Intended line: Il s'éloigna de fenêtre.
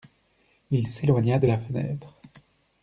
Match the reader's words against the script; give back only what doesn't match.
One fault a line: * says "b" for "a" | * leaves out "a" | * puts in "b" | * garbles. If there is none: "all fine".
* puts in "la"